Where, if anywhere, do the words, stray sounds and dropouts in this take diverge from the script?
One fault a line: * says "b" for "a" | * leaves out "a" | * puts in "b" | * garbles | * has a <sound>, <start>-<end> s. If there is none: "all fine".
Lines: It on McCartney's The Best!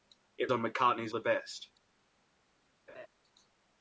* has a laugh, 2.9-3.1 s